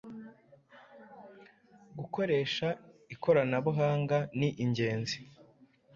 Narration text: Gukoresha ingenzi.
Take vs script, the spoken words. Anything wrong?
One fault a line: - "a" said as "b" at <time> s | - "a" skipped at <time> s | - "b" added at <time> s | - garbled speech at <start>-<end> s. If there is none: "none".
- "ikoranabuhanga ni" added at 3.1 s